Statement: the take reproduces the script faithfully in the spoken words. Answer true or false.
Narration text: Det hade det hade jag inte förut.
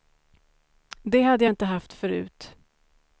false